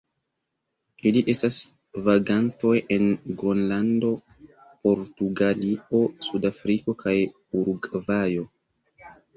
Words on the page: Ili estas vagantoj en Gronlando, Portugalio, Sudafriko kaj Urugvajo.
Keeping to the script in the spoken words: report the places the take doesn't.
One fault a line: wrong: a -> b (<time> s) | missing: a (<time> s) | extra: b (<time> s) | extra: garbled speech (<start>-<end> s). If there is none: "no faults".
no faults